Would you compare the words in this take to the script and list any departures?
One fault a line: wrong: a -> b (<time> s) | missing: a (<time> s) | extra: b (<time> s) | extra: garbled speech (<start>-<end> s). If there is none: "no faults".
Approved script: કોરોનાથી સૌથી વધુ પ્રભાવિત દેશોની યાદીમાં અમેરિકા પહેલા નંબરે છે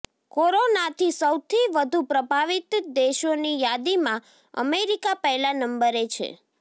no faults